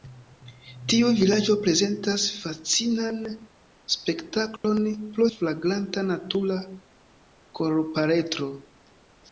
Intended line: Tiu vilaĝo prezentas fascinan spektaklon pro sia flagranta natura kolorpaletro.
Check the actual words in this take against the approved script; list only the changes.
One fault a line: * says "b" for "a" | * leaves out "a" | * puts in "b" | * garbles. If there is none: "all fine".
* leaves out "sia"